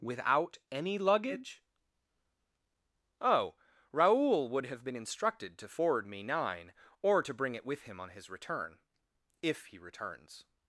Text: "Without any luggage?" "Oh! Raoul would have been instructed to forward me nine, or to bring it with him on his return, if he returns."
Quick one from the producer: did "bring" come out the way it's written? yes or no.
yes